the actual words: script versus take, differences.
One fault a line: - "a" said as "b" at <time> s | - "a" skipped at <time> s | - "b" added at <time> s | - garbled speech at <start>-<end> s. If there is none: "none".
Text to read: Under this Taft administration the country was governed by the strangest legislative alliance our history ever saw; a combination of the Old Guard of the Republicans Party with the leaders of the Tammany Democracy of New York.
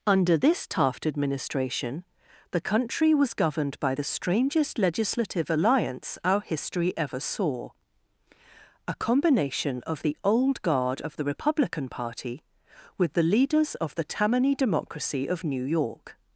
- "Republicans" said as "Republican" at 11.2 s